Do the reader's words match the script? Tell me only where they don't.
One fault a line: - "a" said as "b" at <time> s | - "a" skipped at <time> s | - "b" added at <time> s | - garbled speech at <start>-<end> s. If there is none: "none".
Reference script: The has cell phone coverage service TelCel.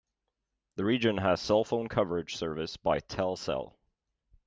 - "region" added at 0.8 s
- "by" added at 2.8 s